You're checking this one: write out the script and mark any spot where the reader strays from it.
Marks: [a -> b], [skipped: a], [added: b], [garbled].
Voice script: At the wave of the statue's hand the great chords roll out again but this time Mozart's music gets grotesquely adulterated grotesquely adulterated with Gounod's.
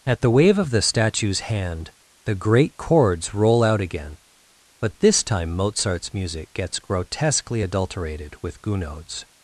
At the wave of the statue's hand the great chords roll out again but this time Mozart's music gets grotesquely adulterated [skipped: grotesquely adulterated] with Gounod's.